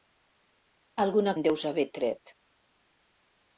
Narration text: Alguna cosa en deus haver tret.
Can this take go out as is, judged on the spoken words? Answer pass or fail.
fail